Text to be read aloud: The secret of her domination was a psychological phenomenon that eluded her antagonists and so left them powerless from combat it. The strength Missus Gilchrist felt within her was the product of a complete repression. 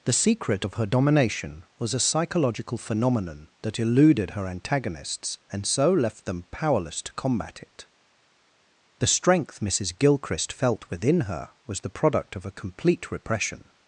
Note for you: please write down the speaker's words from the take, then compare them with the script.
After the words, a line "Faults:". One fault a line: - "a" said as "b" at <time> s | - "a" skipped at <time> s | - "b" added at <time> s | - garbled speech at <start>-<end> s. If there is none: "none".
The secret of her domination was a psychological phenomenon that eluded her antagonists and so left them powerless to combat it. The strength Missus Gilchrist felt within her was the product of a complete repression.
Faults:
- "from" said as "to" at 7.0 s